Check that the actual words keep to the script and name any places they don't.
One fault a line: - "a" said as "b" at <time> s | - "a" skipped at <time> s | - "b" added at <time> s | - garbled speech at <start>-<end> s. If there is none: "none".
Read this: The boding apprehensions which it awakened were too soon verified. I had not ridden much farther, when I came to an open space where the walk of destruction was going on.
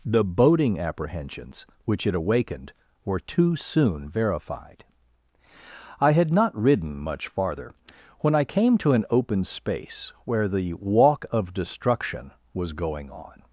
none